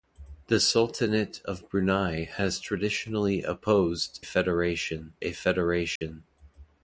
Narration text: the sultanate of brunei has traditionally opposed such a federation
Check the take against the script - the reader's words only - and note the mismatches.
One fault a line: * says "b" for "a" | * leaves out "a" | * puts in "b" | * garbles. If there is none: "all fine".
* says "federation" for "such"